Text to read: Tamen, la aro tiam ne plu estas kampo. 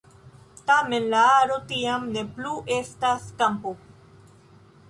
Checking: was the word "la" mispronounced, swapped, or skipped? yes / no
no